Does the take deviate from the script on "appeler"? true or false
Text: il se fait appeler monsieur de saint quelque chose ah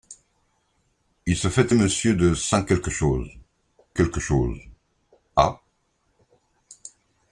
true